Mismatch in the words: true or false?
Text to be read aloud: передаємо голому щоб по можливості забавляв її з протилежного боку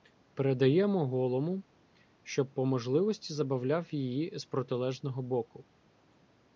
false